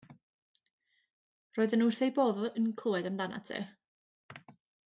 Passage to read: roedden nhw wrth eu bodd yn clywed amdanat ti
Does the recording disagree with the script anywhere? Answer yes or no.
no